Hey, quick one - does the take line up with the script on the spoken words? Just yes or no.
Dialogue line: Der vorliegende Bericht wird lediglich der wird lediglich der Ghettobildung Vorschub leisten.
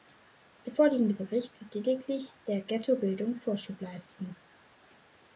no